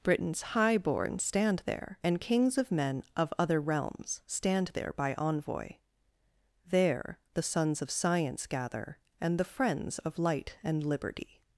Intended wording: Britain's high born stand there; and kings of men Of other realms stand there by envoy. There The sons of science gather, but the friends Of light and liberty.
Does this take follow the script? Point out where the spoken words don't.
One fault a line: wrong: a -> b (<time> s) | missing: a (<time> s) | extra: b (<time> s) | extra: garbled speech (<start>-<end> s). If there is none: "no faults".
wrong: but -> and (9.2 s)